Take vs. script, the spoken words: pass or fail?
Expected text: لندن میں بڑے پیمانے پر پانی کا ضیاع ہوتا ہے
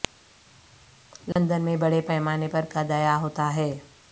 fail